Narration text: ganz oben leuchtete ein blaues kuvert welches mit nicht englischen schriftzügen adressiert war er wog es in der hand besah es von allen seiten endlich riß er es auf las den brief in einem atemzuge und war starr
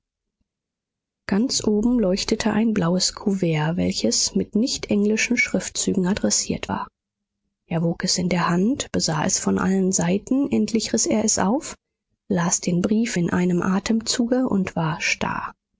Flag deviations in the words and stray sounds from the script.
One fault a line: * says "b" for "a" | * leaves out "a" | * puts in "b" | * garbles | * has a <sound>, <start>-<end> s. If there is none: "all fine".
all fine